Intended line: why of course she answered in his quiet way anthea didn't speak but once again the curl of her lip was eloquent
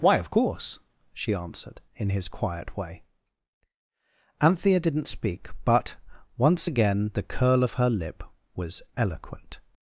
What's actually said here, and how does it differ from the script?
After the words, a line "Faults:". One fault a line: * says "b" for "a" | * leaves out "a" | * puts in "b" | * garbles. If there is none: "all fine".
why of course she answered in his quiet way anthea didn't speak but once again the curl of her lip was eloquent
Faults:
all fine